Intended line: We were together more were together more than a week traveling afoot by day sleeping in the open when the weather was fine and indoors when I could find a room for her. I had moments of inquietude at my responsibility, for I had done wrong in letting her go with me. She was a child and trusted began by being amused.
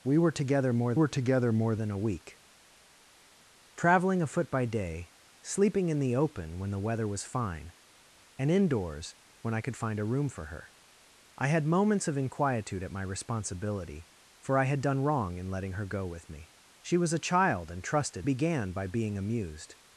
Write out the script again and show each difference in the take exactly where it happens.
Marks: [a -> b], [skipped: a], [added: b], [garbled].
We were together more were together more than a week traveling afoot by day sleeping in the open when the weather was fine and indoors when I could find a room for her. I had moments of inquietude at my responsibility, for I had done wrong in letting her go with me. She was a child and trusted began by being amused.